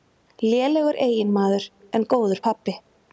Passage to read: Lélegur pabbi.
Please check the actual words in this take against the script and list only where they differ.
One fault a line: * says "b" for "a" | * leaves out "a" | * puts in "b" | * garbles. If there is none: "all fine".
* puts in "eiginmaður en góður"